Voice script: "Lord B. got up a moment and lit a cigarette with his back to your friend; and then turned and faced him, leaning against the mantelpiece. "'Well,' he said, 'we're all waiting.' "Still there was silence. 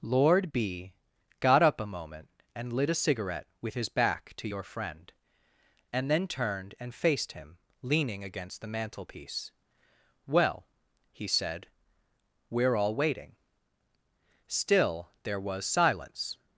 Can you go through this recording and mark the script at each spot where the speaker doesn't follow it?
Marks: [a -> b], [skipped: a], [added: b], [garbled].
"Lord B. got up a moment and lit a cigarette with his back to your friend; and then turned and faced him, leaning against the mantelpiece. "'Well,' he said, 'we're all waiting.' "Still there was silence.